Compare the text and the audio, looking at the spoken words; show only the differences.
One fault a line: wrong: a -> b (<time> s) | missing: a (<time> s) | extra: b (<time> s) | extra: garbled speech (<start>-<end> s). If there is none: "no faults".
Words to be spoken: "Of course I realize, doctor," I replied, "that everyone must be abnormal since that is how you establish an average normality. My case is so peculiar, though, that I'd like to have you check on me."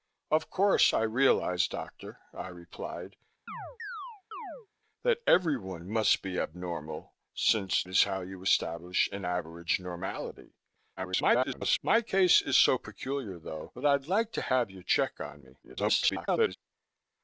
missing: that (7.8 s)
extra: garbled speech (11.0-11.8 s)
extra: garbled speech (15.6-16.6 s)